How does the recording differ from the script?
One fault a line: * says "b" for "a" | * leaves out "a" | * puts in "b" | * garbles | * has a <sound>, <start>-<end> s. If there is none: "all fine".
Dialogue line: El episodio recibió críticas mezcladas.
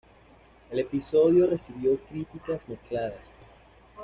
all fine